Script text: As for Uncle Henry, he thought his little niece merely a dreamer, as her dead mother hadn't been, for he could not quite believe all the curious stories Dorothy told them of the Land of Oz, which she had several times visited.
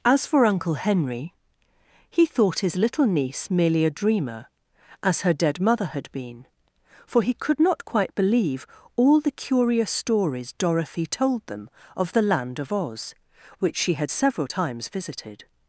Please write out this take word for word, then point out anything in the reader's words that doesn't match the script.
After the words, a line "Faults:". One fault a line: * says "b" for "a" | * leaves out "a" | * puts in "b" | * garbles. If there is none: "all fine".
As for Uncle Henry, he thought his little niece merely a dreamer, as her dead mother had been, for he could not quite believe all the curious stories Dorothy told them of the Land of Oz, which she had several times visited.
Faults:
* says "had" for "hadn't"